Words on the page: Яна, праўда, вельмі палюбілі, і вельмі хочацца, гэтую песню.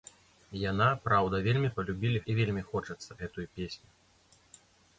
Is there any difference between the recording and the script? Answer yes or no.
no